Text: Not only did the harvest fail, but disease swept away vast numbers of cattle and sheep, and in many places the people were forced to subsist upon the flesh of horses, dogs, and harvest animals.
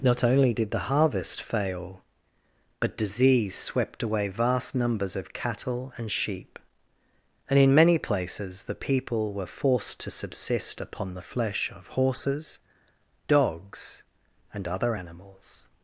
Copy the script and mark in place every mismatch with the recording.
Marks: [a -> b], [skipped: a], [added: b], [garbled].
Not only did the harvest fail, but disease swept away vast numbers of cattle and sheep, and in many places the people were forced to subsist upon the flesh of horses, dogs, and [harvest -> other] animals.